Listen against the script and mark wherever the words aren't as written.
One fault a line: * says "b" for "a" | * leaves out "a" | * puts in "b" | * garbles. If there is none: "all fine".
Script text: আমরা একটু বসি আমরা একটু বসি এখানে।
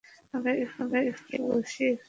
* leaves out "আমরা একটু বসি"